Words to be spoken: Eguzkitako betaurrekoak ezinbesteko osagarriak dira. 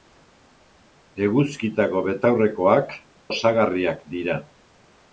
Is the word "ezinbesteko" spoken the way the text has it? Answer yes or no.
no